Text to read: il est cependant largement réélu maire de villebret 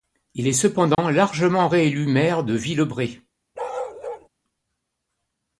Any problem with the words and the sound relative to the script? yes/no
yes